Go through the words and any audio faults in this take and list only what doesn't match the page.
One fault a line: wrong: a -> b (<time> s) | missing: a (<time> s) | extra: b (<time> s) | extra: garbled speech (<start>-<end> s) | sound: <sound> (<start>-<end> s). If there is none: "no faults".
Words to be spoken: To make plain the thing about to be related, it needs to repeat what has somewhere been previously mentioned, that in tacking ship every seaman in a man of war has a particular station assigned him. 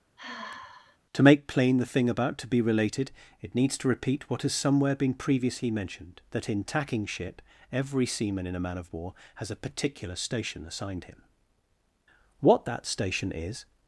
sound: sigh (0.2-1.0 s)
extra: What that station is (12.4 s)